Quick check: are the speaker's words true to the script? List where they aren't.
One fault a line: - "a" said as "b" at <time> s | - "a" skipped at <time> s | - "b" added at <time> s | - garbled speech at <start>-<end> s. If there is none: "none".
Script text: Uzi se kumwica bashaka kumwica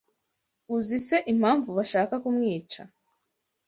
- "kumwica" said as "impamvu" at 1.3 s